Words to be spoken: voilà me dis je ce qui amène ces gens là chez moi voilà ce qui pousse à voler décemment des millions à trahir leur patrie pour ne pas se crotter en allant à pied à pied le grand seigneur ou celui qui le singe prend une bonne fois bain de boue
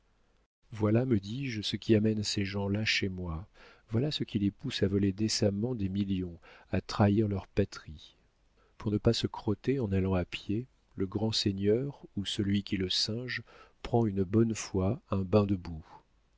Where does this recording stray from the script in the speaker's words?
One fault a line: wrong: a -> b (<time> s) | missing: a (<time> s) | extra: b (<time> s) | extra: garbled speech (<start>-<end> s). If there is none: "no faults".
extra: les (4.4 s)
missing: à pied (10.7 s)
extra: un (15.1 s)